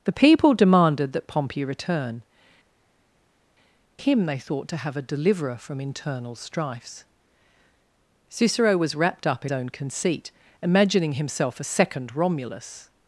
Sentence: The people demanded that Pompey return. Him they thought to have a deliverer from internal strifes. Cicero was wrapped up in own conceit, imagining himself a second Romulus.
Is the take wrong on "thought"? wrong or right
right